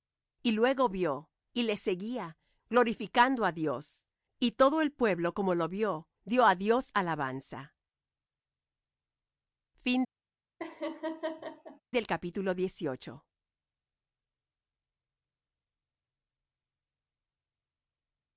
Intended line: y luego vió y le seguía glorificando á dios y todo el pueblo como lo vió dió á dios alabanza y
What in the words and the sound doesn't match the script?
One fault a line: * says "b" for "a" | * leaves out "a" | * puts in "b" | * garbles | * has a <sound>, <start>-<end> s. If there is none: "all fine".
* has a laugh, 10.6-11.8 s